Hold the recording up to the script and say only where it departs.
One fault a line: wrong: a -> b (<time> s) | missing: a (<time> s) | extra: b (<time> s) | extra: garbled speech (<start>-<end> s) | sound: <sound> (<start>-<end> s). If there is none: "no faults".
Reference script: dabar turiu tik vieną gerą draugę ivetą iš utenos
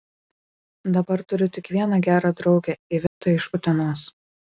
sound: dropout (3.1-3.2 s)